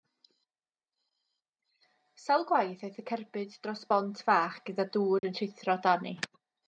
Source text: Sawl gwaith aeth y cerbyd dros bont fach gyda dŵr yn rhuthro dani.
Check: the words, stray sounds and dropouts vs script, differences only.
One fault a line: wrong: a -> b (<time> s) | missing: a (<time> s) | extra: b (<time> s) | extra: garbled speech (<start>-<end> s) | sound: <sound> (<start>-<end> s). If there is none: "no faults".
sound: dropout (5.2-5.2 s)